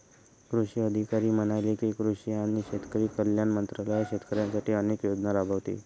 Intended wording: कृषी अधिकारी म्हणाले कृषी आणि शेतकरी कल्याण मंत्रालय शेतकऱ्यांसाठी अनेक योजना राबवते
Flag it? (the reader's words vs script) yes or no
yes